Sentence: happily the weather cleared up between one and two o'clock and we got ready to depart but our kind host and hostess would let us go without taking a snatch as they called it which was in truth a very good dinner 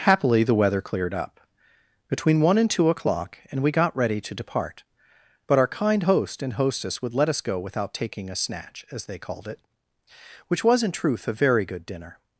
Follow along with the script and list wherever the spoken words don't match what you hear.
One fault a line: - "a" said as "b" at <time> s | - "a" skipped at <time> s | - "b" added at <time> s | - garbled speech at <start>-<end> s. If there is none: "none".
none